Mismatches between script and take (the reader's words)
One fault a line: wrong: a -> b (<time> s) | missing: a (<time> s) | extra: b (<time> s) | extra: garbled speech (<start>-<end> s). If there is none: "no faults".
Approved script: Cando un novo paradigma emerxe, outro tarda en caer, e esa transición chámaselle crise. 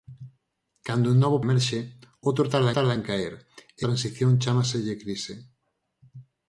missing: paradigma (1.4 s)
extra: tarda (2.8 s)
missing: esa (3.8 s)